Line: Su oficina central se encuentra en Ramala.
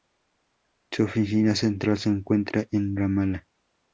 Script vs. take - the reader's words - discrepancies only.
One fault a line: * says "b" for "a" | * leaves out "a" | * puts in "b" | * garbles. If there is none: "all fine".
all fine